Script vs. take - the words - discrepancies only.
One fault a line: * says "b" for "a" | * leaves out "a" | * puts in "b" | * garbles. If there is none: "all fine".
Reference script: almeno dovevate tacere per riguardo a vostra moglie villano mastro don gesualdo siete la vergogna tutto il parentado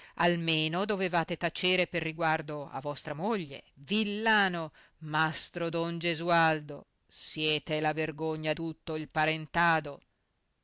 all fine